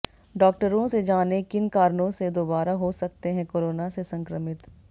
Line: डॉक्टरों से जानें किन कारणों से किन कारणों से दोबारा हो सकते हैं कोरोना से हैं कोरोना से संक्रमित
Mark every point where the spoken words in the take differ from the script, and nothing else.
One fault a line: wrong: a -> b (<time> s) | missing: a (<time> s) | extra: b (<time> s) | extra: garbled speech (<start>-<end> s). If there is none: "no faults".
missing: किन कारणों से (2.3 s)
missing: हैं कोरोना से (4.0 s)